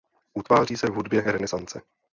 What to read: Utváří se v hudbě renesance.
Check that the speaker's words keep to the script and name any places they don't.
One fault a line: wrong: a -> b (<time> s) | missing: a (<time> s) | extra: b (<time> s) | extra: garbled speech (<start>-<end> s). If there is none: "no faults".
no faults